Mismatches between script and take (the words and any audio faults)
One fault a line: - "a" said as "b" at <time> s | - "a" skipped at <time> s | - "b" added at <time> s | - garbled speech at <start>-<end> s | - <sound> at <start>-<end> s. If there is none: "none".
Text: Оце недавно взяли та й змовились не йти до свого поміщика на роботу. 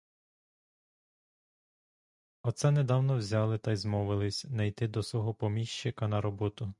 none